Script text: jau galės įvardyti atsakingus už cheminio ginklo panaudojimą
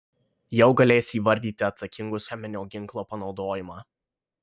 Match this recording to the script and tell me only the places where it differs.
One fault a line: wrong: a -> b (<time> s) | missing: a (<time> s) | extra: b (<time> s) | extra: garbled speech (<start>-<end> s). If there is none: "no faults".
missing: už (2.3 s)